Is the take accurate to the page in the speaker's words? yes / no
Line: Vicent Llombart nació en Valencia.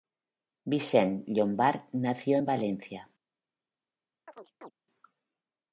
yes